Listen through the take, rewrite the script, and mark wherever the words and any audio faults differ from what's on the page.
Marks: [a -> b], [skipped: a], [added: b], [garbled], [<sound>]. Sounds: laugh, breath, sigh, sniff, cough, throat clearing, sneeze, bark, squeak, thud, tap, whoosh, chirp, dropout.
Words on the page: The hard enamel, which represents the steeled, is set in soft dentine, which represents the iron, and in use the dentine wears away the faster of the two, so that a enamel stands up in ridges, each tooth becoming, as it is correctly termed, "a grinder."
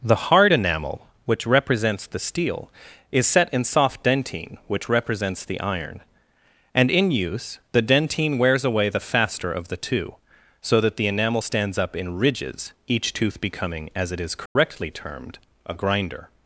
The hard enamel, which represents the [steeled, -> steel] is set in soft dentine, which represents the iron, and in use the dentine wears away the faster of the two, so that [a -> the] enamel stands up in ridges, each tooth becoming, as it is correctly [dropout] termed, "a grinder."